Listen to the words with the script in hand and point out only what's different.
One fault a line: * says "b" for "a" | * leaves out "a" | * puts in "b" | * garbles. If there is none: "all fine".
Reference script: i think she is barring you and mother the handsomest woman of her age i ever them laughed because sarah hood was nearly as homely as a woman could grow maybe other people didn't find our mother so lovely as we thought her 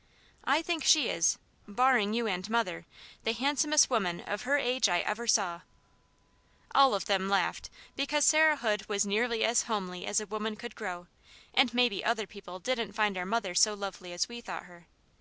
* puts in "saw all of"
* puts in "and"